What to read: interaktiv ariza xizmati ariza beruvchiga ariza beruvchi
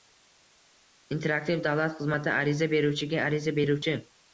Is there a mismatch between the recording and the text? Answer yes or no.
yes